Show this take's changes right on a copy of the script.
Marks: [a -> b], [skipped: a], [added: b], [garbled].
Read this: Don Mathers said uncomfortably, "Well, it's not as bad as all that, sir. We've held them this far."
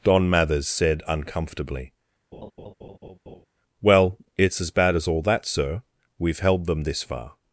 Don Mathers said uncomfortably, "Well, it's [skipped: not] as bad as all that, sir. We've held them this far."